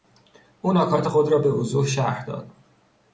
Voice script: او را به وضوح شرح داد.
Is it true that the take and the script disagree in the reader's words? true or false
true